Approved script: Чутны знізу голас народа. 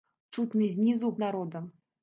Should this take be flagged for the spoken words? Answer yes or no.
yes